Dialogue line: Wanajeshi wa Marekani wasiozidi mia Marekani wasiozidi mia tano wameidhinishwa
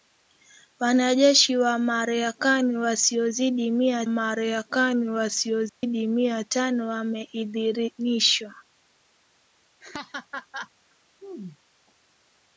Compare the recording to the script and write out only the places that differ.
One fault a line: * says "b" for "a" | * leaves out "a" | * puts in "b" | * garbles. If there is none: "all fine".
all fine